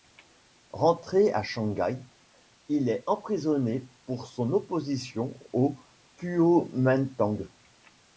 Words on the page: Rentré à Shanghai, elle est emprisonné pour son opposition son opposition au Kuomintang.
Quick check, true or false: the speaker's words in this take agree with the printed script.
false